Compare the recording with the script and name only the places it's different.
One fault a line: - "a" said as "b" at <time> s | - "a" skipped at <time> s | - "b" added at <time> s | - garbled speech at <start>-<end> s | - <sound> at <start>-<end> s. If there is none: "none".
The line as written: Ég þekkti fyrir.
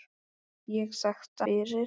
none